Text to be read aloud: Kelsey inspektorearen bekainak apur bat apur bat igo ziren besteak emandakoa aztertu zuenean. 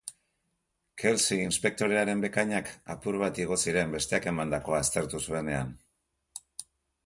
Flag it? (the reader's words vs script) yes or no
yes